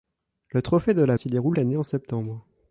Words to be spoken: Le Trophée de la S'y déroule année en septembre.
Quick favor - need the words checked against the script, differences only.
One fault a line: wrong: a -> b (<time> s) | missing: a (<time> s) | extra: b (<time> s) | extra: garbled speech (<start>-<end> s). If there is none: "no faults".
no faults